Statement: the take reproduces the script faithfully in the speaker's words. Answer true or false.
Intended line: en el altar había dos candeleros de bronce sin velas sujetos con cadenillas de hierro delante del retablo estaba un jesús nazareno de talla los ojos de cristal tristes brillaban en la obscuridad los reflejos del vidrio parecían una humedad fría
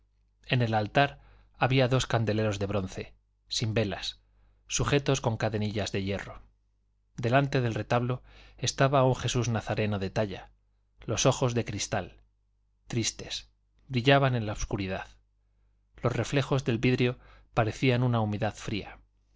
true